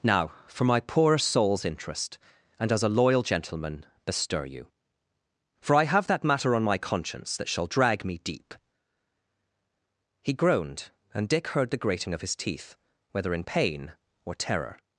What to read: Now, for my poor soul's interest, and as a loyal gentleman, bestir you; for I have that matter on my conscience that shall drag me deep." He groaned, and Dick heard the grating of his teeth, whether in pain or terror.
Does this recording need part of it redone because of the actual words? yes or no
no